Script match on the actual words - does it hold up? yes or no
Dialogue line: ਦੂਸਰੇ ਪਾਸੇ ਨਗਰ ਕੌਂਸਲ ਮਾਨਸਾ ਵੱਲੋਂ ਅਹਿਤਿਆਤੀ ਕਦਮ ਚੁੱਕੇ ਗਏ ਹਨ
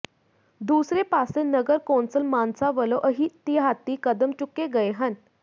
yes